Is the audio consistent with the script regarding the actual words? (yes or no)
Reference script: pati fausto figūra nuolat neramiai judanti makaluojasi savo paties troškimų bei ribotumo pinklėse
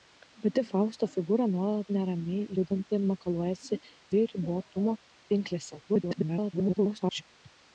no